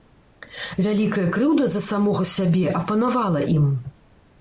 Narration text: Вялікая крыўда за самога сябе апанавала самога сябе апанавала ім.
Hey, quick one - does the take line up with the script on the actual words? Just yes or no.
no